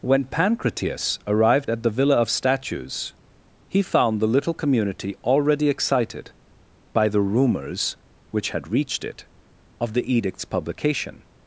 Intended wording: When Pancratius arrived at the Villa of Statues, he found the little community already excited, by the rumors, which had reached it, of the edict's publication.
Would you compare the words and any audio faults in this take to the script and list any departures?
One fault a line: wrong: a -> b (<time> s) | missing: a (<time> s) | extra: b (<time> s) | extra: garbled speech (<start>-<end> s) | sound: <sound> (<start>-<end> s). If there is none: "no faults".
no faults